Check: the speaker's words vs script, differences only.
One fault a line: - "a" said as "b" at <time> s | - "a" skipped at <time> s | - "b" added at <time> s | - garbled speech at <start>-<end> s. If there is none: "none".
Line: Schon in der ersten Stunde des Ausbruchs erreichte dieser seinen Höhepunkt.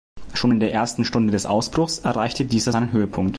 none